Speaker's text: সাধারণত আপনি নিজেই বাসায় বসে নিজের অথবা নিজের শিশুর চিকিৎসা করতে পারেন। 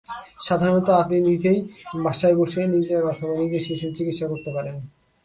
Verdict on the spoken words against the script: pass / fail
pass